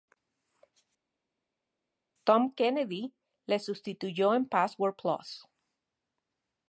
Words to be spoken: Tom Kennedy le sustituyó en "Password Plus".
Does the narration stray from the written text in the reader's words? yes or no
no